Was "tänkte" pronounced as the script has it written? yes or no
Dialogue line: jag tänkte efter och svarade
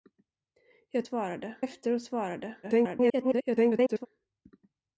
no